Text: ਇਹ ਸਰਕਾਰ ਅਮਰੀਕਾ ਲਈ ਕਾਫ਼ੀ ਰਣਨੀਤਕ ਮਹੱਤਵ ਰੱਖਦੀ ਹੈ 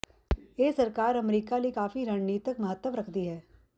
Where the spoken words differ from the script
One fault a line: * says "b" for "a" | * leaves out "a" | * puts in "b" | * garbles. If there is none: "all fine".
all fine